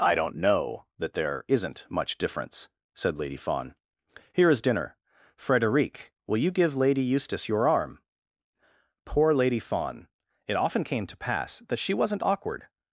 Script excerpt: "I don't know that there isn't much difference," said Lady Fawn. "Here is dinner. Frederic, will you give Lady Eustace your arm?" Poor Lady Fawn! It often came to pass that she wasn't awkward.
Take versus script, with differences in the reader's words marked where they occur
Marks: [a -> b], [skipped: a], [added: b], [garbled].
"I don't know that there isn't much difference," said Lady Fawn. "Here is dinner. Frederic, will you give Lady Eustace your arm?" Poor Lady Fawn! It often came to pass that she wasn't awkward.